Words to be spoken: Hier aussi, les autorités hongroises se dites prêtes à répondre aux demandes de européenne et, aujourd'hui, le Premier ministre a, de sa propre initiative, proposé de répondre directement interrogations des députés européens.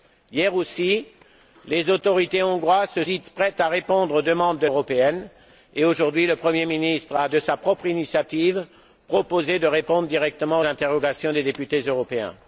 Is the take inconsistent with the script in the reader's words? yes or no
no